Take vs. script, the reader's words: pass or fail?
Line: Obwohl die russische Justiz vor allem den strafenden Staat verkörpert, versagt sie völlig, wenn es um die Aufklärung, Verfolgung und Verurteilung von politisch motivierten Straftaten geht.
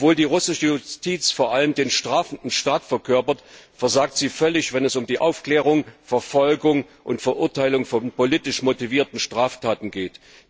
pass